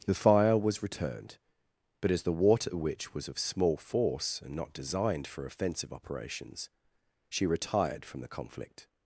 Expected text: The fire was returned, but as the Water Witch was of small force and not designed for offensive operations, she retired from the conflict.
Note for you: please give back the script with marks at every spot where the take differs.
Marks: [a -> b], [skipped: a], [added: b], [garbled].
The fire was returned, but as the Water Witch was of small force and not designed for offensive operations, she retired from the conflict.